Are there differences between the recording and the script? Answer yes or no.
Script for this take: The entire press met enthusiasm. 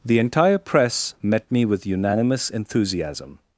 yes